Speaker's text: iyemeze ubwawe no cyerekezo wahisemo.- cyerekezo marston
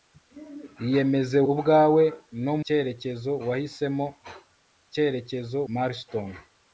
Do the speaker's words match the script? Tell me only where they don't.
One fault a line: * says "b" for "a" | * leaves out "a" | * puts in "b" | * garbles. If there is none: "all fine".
all fine